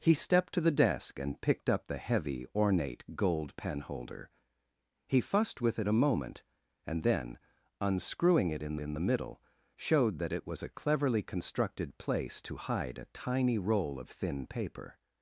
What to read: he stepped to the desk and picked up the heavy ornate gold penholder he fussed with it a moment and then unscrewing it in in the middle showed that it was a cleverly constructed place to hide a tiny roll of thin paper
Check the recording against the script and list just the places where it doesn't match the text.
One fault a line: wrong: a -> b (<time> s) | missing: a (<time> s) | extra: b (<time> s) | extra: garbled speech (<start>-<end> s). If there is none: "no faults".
no faults